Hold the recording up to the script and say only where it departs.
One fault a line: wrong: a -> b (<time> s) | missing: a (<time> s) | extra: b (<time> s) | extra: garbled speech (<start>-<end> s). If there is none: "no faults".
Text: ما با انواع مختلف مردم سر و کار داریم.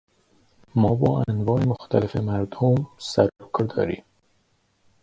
no faults